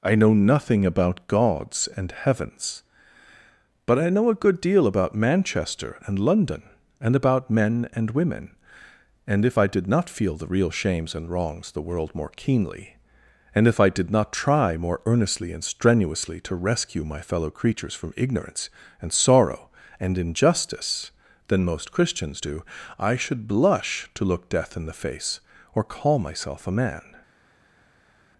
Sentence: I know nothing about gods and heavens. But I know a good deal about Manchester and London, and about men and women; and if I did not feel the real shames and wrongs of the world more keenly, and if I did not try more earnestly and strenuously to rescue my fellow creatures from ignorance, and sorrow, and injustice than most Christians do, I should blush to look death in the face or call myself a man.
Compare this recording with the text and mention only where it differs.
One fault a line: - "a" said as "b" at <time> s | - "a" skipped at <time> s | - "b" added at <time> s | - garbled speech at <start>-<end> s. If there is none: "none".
- "of" skipped at 11.7 s